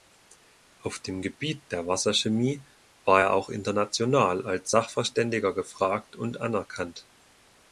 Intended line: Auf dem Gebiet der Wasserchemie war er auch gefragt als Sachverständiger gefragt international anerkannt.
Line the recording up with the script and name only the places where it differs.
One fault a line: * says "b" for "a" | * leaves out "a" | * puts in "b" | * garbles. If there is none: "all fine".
* says "international" for "gefragt"
* says "und" for "international"